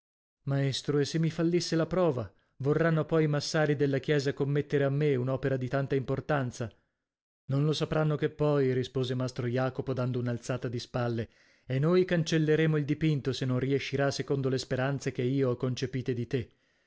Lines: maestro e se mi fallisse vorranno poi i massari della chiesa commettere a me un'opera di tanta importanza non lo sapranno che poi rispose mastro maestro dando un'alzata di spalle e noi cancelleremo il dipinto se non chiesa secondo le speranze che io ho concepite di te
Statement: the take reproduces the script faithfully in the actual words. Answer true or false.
false